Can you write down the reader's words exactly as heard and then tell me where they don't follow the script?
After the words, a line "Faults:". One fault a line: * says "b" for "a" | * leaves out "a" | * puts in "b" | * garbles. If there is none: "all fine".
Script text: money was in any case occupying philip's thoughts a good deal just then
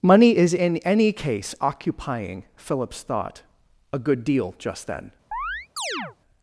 money is in any case occupying philip's thought a good deal just then
Faults:
* says "is" for "was"
* says "thought" for "thoughts"